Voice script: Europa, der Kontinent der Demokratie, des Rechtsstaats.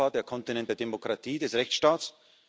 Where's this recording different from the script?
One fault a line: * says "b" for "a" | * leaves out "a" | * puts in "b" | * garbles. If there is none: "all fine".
all fine